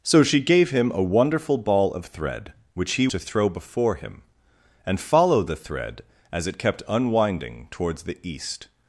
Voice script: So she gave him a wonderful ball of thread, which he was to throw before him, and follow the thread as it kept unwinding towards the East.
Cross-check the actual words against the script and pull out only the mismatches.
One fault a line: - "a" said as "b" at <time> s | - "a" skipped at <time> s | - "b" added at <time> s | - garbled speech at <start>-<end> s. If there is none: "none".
- "was" skipped at 3.1 s